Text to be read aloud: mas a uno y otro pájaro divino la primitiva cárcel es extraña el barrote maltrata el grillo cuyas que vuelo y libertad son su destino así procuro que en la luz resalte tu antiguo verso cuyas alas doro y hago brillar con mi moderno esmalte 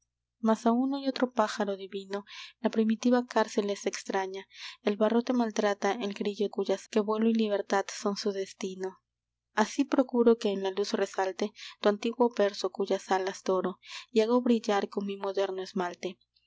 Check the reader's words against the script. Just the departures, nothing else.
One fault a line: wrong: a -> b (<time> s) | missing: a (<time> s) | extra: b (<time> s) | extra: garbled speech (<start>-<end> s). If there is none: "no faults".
no faults